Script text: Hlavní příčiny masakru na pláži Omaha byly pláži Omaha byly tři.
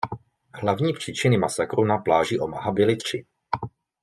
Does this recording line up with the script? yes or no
no